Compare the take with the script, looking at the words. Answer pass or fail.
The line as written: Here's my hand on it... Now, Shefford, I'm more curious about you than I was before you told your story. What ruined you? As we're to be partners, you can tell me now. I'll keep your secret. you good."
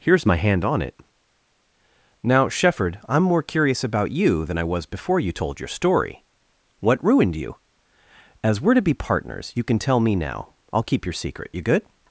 pass